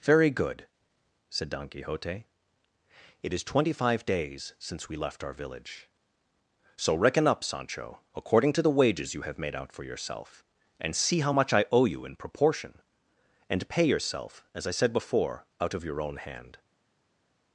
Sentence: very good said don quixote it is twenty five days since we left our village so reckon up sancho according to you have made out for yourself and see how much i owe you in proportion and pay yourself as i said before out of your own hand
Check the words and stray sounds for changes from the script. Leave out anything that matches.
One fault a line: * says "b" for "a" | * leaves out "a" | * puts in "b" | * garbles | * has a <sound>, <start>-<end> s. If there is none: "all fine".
* puts in "the wages"